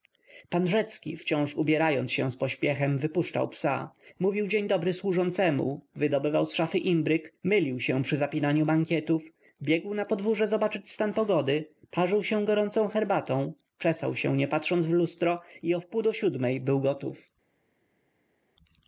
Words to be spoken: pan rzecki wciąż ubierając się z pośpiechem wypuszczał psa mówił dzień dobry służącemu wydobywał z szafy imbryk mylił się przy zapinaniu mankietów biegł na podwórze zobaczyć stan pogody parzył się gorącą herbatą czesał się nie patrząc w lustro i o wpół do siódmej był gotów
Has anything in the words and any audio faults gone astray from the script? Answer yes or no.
no